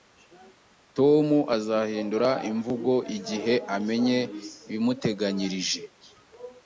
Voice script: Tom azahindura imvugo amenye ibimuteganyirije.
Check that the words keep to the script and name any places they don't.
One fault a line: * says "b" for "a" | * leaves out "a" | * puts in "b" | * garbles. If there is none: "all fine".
* puts in "igihe"